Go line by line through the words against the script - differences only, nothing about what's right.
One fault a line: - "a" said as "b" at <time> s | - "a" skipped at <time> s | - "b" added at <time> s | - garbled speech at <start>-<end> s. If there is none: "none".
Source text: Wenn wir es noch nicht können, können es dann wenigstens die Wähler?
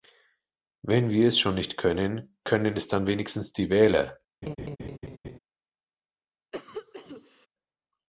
- "noch" said as "schon" at 1.4 s